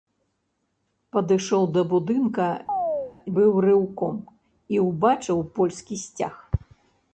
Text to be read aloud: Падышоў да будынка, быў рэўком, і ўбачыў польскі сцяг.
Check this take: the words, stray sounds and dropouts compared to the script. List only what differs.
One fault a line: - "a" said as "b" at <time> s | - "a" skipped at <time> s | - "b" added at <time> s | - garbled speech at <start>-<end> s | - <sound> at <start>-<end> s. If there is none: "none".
- chirp at 2.7-3.1 s